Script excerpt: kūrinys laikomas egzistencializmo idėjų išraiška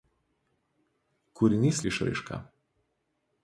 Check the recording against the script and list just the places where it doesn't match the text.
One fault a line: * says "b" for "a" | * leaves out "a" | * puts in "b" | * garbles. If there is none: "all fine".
* leaves out "laikomas egzistencializmo idėjų"